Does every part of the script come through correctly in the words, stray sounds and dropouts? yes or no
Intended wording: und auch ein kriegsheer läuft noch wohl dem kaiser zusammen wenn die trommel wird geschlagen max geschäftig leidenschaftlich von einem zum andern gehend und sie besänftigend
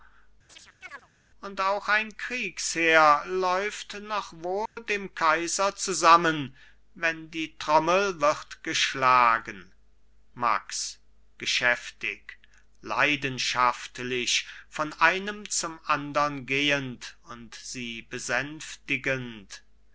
no